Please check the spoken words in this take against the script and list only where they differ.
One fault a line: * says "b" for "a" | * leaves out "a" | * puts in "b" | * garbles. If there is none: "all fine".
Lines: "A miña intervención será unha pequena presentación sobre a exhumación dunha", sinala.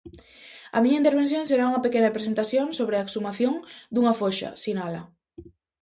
* puts in "foxa"